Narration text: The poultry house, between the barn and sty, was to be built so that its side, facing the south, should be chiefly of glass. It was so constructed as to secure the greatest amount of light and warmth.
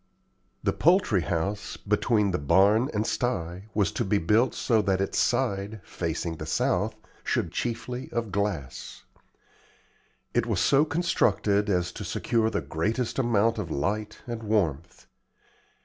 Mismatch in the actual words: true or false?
true